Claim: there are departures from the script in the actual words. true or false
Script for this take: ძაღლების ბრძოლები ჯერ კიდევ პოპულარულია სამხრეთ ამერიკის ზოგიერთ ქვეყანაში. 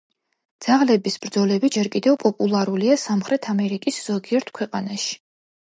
false